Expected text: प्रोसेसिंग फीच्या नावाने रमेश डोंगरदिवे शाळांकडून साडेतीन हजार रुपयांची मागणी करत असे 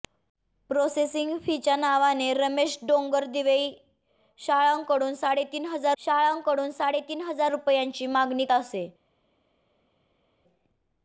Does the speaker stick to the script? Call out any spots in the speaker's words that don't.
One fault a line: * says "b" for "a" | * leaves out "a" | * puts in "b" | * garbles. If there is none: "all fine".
* puts in "शाळांकडून साडेतीन हजार"
* leaves out "करत"